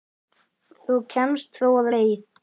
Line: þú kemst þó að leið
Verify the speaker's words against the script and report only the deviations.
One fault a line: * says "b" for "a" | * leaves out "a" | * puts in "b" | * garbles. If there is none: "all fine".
all fine